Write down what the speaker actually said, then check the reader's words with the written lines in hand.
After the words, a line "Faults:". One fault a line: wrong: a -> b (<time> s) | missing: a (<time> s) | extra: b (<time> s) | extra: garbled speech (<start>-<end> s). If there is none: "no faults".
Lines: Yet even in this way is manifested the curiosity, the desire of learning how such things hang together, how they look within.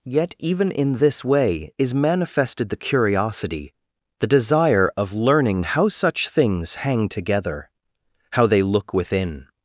Yet even in this way is manifested the curiosity, the desire of learning how such things hang together, how they look within.
Faults:
no faults